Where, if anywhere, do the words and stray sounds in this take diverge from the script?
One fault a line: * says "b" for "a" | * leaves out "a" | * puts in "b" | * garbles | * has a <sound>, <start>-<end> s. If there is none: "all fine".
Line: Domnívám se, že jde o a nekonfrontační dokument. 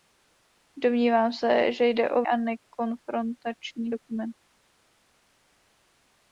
all fine